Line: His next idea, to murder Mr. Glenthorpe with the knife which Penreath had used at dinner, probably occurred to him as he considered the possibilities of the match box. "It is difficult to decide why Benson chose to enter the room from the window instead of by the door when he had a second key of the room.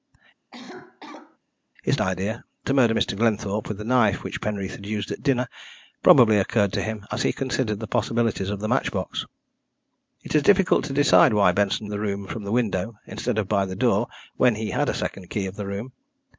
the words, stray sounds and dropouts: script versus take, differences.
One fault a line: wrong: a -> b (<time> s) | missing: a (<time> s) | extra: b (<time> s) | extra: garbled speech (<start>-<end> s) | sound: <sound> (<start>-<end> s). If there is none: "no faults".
sound: cough (0.5-1.4 s)
missing: next (2.0 s)
missing: chose to enter (11.9 s)